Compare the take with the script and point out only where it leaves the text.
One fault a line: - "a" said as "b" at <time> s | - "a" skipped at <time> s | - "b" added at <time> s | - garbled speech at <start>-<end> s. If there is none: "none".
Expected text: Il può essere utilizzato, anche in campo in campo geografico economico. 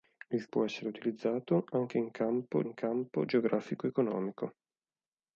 none